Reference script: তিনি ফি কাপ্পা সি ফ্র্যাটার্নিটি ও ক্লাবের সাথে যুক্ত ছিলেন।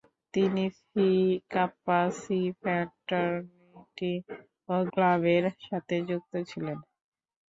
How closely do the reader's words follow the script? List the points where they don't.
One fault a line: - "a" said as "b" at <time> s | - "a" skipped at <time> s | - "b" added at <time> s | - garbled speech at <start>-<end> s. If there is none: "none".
none